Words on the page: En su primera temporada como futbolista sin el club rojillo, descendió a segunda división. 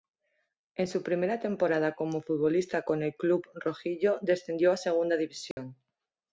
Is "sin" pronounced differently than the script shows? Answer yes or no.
yes